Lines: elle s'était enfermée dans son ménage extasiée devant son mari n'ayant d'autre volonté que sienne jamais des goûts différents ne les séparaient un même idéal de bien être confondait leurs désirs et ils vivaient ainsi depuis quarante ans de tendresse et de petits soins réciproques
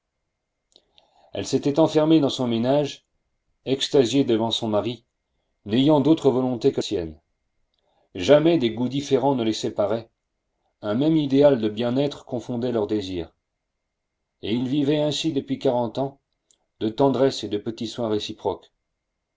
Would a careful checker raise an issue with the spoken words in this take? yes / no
no